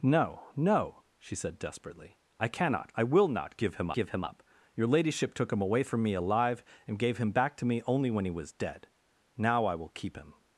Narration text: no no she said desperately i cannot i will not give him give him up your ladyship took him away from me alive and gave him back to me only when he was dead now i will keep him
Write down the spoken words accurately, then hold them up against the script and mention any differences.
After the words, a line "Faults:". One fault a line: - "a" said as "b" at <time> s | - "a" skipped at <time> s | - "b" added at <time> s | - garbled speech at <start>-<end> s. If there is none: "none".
no no she said desperately i cannot i will not give him give him up your ladyship took him away from me alive and gave him back to me only when he was dead now i will keep him
Faults:
none